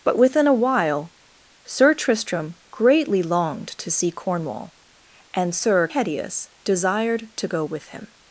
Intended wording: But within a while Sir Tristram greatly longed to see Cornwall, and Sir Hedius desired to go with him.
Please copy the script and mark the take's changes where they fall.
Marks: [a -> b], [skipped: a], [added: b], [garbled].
But within a while Sir Tristram greatly longed to see Cornwall, and Sir Hedius desired to go with him.